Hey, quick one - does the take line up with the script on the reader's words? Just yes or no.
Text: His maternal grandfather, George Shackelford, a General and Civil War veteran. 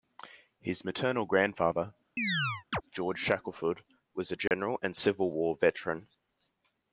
no